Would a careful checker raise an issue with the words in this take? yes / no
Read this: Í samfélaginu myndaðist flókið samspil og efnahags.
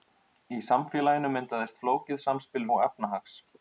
no